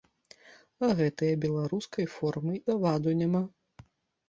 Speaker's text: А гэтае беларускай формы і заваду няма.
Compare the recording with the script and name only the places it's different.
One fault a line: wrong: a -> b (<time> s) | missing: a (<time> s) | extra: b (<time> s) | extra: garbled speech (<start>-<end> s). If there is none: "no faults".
missing: і (2.5 s)